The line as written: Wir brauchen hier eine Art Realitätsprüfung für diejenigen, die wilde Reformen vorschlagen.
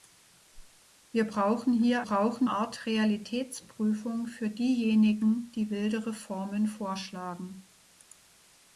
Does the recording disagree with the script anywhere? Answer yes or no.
yes